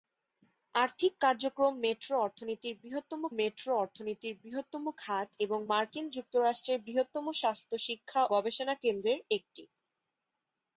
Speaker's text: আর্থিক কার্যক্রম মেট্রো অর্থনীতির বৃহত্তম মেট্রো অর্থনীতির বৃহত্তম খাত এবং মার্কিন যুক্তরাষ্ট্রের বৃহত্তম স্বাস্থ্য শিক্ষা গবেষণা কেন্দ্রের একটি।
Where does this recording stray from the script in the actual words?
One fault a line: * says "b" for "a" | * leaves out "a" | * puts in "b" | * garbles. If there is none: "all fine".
all fine